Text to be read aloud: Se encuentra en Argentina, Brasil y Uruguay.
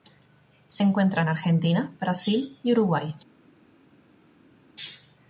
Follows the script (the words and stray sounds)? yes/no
yes